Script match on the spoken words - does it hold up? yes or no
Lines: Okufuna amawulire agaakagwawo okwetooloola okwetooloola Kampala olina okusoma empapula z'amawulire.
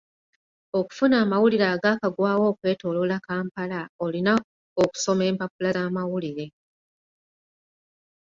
no